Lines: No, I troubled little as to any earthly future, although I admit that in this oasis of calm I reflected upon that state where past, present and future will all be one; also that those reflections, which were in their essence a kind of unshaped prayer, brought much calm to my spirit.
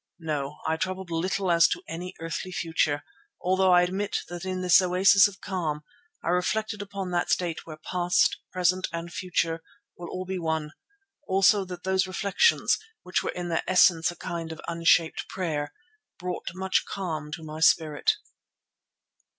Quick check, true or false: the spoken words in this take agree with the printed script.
true